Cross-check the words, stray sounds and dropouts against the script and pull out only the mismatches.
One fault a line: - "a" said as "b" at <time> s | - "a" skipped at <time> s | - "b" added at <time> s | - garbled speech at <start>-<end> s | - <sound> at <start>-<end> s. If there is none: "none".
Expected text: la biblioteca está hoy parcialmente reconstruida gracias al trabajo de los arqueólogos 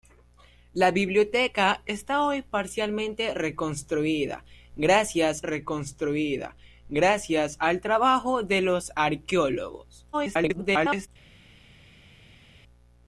- "reconstruida gracias" added at 5.4 s
- garbled speech at 10.1-11.1 s